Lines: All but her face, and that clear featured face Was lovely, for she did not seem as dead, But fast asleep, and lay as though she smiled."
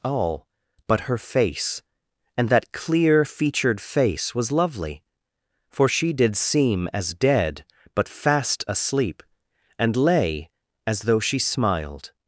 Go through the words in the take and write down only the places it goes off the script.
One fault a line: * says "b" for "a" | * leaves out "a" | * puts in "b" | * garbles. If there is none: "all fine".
* leaves out "not"